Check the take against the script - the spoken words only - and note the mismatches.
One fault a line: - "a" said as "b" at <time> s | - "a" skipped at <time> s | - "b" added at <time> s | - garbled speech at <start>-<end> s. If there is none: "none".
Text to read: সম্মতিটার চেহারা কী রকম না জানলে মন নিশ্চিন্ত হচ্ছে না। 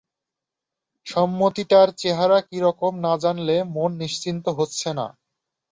none